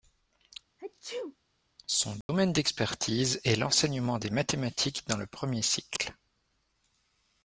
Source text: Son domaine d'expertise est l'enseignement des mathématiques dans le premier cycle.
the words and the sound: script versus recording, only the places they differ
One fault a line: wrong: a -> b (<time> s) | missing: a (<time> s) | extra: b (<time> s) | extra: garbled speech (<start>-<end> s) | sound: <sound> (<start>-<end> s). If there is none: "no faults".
sound: sneeze (0.8-1.4 s)
sound: dropout (2.2-2.3 s)